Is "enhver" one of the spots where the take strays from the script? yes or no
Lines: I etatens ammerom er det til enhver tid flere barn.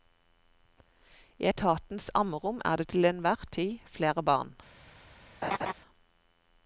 no